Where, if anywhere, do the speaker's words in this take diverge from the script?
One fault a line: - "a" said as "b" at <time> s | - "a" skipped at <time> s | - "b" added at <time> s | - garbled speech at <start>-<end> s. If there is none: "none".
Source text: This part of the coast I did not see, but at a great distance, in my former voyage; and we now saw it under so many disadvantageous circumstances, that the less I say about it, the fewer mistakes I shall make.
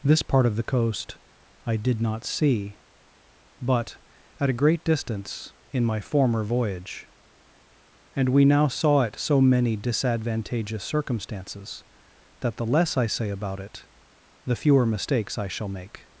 - "under" skipped at 9.2 s